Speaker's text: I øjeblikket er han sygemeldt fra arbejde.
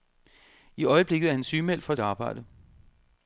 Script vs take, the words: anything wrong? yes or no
no